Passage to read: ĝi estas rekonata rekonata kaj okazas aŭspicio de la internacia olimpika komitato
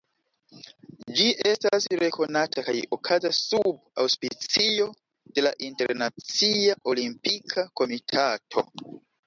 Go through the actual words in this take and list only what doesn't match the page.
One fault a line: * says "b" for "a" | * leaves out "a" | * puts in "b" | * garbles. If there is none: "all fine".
* leaves out "rekonata"
* puts in "sub"